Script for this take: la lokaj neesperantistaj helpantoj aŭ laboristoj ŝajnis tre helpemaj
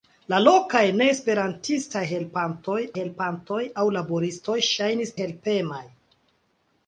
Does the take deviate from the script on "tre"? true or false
true